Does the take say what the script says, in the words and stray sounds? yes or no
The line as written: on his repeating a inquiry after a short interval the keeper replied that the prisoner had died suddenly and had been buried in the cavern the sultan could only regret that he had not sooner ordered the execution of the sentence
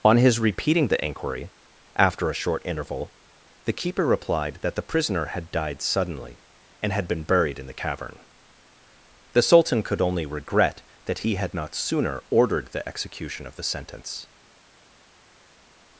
no